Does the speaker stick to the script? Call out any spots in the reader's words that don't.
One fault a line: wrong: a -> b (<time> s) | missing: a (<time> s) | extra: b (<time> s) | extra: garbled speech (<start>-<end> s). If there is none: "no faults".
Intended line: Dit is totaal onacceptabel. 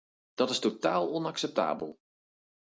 wrong: Dit -> Dat (0.3 s)